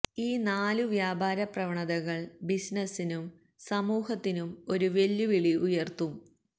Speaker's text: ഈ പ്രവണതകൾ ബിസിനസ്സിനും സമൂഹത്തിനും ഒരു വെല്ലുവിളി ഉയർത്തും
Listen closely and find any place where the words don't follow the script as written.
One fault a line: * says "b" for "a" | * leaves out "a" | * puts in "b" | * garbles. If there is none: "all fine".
* puts in "നാലു വ്യാപാര"